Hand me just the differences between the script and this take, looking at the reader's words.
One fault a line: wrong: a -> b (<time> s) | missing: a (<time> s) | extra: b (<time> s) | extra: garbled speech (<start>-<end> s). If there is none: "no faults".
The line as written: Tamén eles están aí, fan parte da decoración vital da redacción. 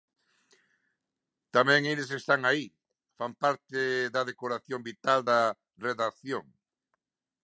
no faults